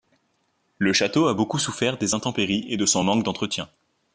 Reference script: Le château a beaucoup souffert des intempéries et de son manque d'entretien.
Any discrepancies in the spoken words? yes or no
no